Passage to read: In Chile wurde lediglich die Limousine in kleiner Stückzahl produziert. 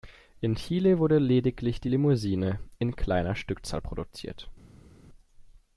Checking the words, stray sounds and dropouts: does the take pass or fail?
pass